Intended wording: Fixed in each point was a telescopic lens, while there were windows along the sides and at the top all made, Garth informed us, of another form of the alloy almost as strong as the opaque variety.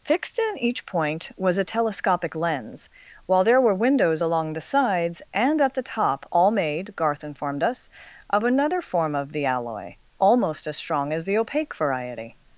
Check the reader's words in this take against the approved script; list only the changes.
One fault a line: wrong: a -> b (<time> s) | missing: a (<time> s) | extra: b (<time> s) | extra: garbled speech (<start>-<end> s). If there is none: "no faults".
no faults